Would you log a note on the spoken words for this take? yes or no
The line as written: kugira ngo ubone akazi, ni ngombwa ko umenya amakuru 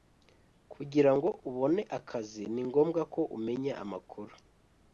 no